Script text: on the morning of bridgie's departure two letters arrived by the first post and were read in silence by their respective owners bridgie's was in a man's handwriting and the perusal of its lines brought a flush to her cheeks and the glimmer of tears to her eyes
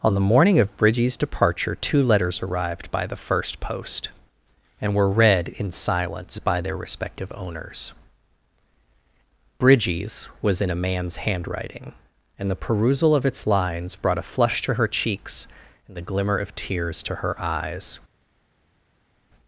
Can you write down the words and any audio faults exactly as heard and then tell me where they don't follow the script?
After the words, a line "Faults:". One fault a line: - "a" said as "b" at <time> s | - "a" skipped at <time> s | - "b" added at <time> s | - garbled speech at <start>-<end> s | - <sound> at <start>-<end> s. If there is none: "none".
on the morning of bridgie's departure two letters arrived by the first post and were read in silence by their respective owners bridgie's was in a man's handwriting and the perusal of its lines brought a flush to her cheeks and the glimmer of tears to her eyes
Faults:
none